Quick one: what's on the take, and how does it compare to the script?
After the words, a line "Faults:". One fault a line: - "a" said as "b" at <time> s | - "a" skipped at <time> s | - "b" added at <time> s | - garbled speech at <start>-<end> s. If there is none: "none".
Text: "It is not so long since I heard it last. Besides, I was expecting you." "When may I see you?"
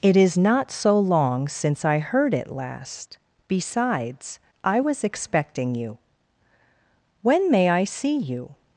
"It is not so long since I heard it last. Besides, I was expecting you." "When may I see you?"
Faults:
none